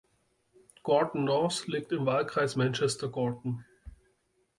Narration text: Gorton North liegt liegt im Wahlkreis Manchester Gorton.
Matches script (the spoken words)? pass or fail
fail